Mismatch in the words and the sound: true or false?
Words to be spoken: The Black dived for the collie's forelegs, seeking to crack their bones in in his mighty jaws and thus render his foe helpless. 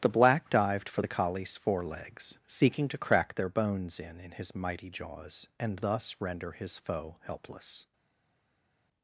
false